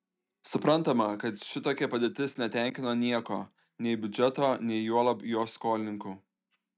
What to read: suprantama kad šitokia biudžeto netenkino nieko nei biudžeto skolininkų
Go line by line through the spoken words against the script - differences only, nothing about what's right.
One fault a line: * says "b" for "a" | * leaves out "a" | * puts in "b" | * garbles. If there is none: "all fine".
* says "padėtis" for "biudžeto"
* puts in "nei juolab jo"